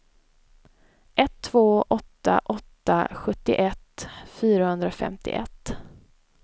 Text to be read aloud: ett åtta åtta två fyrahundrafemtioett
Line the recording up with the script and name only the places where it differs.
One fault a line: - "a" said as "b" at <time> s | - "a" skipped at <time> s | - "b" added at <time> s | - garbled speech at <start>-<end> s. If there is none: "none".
- "två" added at 1.4 s
- "två" said as "sjuttioett" at 3.1 s